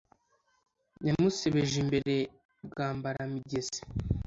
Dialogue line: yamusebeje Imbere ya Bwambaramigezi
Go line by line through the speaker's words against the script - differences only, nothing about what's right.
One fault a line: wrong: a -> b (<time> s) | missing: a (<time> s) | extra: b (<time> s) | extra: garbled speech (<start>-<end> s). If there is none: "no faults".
missing: ya (2.1 s)